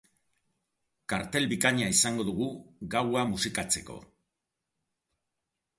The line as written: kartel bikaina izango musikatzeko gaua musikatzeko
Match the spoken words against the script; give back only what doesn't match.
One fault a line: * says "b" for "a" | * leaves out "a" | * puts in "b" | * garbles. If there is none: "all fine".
* says "dugu" for "musikatzeko"